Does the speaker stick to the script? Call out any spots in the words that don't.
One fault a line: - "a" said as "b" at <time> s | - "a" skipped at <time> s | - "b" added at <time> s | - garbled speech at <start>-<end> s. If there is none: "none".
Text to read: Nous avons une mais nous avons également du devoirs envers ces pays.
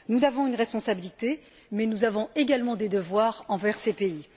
- "responsabilité" added at 0.5 s
- "du" said as "des" at 2.8 s